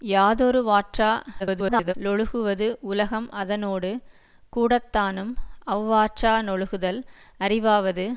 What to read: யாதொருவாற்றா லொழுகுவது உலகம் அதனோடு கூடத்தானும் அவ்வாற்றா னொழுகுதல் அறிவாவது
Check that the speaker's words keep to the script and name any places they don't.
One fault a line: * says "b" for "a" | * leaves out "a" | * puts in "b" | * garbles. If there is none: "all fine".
* garbles